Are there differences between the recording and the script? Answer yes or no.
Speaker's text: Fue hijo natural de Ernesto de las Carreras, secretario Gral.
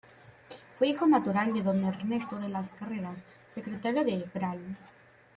yes